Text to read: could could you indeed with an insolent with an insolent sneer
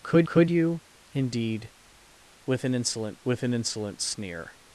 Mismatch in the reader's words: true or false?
false